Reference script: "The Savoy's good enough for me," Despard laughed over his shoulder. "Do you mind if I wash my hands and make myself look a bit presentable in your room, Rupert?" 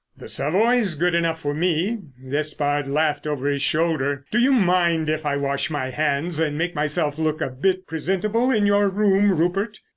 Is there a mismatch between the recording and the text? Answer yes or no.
no